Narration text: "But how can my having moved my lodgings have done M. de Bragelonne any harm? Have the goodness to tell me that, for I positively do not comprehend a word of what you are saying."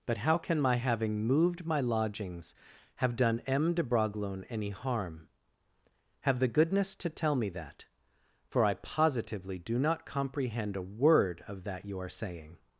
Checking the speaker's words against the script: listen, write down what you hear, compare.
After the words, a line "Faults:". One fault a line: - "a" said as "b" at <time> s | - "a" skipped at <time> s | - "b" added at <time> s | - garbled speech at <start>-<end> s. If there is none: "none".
"But how can my having moved my lodgings have done M. de Bragelonne any harm? Have the goodness to tell me that, for I positively do not comprehend a word of that you are saying."
Faults:
- "what" said as "that" at 11.6 s